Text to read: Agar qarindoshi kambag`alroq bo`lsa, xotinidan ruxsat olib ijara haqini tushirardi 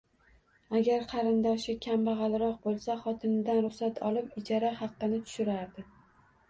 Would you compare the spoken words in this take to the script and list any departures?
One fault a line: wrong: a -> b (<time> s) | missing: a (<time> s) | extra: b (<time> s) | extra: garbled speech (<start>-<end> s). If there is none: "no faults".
no faults